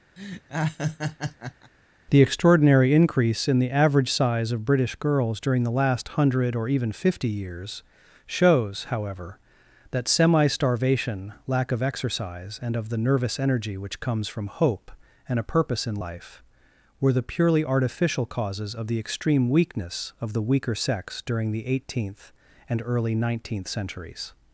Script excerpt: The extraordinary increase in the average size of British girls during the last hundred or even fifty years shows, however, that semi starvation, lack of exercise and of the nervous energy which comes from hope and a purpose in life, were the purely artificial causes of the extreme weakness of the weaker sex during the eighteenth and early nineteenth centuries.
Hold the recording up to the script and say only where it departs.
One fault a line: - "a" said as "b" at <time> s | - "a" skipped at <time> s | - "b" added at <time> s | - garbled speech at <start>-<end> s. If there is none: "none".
none